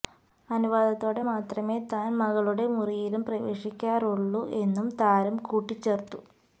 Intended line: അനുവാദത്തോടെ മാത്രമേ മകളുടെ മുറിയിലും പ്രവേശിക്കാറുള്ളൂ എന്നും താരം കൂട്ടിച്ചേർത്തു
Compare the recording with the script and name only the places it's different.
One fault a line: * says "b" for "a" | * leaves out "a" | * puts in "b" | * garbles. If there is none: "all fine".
* puts in "താൻ"